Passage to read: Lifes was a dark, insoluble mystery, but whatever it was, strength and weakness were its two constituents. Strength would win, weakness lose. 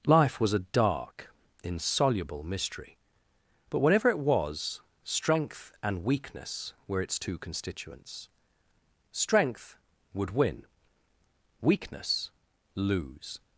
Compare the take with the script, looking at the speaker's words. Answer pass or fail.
fail